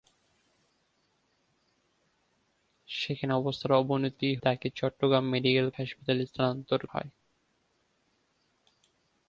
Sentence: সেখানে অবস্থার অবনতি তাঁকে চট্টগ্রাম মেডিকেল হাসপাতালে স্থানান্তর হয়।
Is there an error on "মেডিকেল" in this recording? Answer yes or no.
no